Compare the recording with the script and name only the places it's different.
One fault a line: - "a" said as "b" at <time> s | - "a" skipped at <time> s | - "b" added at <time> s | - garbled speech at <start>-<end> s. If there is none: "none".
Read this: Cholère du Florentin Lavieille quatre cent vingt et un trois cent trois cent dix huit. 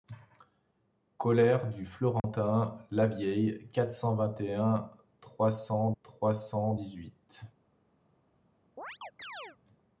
none